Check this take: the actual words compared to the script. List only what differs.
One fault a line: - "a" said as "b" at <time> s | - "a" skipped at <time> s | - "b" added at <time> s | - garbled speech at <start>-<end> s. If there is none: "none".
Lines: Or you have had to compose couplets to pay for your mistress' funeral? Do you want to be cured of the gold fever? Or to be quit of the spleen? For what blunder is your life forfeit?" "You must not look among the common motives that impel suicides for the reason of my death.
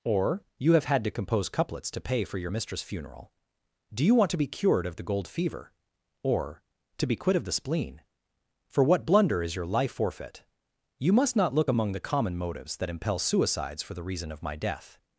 none